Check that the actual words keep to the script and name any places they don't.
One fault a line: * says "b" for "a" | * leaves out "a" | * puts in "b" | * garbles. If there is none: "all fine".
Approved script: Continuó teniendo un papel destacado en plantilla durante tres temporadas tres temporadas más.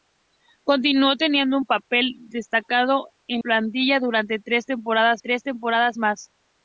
all fine